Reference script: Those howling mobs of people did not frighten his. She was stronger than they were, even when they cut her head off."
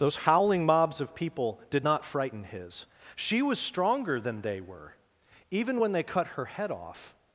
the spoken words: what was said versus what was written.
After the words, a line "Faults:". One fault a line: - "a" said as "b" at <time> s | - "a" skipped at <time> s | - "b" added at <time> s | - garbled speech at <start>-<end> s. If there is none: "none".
Those howling mobs of people did not frighten his. She was stronger than they were, even when they cut her head off."
Faults:
none